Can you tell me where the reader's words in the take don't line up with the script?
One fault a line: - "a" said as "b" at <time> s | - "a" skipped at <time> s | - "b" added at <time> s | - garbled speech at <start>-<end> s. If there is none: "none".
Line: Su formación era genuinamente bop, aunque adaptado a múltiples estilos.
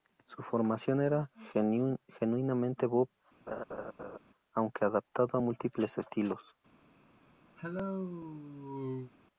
none